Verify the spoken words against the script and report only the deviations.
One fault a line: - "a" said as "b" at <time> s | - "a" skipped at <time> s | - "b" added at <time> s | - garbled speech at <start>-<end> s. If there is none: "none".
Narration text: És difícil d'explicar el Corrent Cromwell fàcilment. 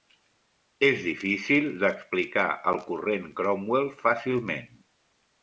none